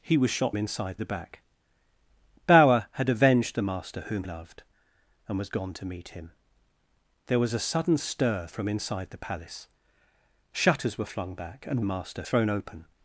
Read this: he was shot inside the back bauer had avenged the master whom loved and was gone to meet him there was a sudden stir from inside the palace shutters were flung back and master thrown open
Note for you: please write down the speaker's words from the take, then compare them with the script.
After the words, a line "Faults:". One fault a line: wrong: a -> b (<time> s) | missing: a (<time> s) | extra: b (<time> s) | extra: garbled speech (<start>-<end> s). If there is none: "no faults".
he was shot inside the back bauer had avenged the master whom loved and was gone to meet him there was a sudden stir from inside the palace shutters were flung back and master thrown open
Faults:
no faults